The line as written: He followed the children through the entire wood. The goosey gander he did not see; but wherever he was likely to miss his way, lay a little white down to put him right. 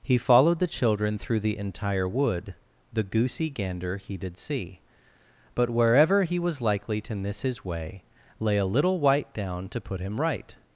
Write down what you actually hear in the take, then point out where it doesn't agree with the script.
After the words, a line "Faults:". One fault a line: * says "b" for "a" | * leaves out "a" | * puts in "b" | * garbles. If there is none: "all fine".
He followed the children through the entire wood. The goosey gander he did see; but wherever he was likely to miss his way, lay a little white down to put him right.
Faults:
* leaves out "not"